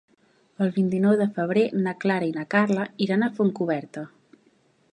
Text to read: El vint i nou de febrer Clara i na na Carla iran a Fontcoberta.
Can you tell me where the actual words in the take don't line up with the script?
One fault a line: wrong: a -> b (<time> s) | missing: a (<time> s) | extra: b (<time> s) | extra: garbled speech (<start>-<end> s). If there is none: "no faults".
extra: na (1.8 s)
missing: na (2.5 s)